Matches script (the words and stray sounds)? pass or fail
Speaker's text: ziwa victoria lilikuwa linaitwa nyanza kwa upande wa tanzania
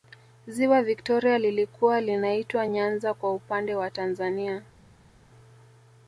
pass